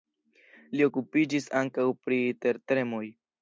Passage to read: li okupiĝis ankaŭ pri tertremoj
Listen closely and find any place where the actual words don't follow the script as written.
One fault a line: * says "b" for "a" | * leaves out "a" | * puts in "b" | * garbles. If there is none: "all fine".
all fine